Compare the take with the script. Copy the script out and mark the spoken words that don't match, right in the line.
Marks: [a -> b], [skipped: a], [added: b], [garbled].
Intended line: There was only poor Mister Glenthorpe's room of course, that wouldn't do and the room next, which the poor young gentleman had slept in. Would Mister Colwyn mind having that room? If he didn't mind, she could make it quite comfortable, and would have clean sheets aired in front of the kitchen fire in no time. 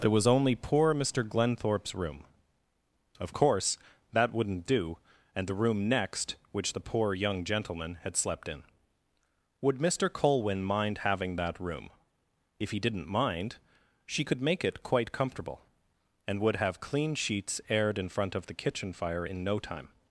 There was only poor Mister Glenthorpe's room of course, that wouldn't do and the room next, which the poor young gentleman had slept in. Would Mister Colwyn mind having that room? If he didn't mind, she could make it quite comfortable, and would have clean sheets aired in front of the kitchen fire in no time.